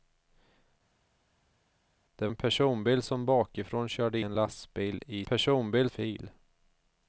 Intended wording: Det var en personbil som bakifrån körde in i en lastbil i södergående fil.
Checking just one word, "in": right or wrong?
wrong